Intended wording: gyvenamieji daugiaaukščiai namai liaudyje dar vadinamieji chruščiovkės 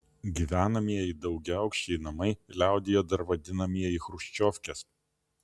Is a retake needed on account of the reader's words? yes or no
no